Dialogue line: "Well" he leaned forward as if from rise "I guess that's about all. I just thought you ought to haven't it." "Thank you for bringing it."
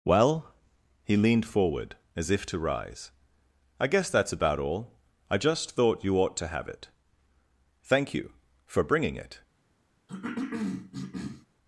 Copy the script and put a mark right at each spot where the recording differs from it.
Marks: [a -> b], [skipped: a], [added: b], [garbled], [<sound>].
"Well" he leaned forward as if [from -> to] rise "I guess that's about all. I just thought you ought to [haven't -> have] it." "Thank you for bringing it." [cough]